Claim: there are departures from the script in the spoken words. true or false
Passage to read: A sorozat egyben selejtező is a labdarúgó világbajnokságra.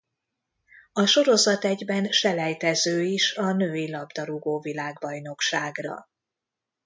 true